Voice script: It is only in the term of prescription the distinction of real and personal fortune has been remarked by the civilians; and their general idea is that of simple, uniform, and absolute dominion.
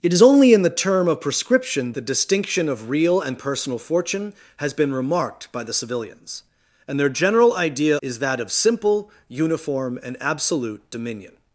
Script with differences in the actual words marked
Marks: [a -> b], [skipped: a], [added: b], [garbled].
It is only in the term of prescription the distinction of real and personal fortune has been remarked by the civilians; and their general idea is that of simple, uniform, and absolute dominion.